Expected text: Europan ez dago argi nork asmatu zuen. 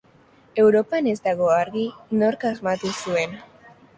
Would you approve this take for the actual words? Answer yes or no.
yes